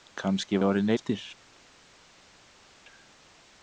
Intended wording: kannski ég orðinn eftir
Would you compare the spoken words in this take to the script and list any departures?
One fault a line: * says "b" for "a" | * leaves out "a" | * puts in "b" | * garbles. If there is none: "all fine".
all fine